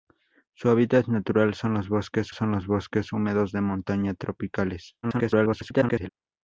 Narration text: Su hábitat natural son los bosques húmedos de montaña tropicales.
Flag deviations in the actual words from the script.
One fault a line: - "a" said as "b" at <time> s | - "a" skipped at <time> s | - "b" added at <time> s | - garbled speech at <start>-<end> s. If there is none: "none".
- "son los bosques" added at 2.3 s
- garbled speech at 5.0-6.1 s